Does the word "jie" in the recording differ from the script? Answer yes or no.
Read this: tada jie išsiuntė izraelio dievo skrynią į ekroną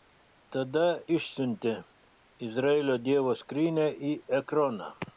yes